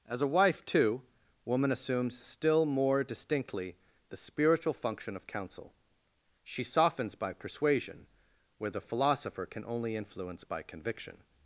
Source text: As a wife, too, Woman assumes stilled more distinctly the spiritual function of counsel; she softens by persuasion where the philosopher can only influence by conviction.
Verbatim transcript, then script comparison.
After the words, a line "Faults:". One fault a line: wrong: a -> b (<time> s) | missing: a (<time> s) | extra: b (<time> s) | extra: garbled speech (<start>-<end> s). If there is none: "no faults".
As a wife, too, Woman assumes still more distinctly the spiritual function of counsel; she softens by persuasion where the philosopher can only influence by conviction.
Faults:
wrong: stilled -> still (2.2 s)